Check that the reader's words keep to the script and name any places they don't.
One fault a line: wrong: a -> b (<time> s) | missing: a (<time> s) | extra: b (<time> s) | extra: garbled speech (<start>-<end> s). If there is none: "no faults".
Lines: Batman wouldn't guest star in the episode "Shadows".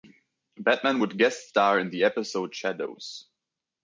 wrong: wouldn't -> would (1.0 s)